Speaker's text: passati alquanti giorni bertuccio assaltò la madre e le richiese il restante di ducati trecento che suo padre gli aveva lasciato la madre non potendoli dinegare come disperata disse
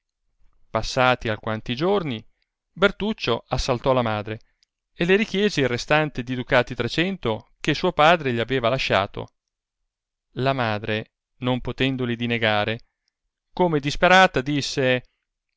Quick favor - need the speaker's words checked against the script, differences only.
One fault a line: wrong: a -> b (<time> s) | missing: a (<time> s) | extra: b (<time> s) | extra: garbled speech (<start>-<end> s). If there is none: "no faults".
no faults